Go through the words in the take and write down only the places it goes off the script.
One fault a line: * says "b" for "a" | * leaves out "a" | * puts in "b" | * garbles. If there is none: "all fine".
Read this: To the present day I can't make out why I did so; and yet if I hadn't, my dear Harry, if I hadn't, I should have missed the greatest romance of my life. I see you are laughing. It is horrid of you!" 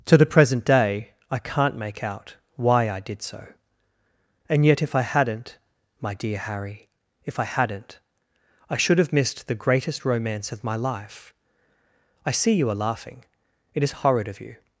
all fine